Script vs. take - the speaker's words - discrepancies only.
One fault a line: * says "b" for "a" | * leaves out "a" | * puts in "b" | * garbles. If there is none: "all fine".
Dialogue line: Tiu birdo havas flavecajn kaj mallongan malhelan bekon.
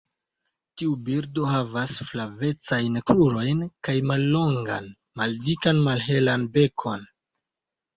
* puts in "krurojn"
* puts in "maldikan"